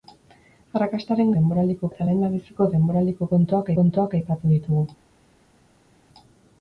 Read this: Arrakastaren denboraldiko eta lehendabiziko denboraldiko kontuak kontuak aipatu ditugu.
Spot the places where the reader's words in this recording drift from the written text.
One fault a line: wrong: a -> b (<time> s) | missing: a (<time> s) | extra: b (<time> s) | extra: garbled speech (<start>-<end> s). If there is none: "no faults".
no faults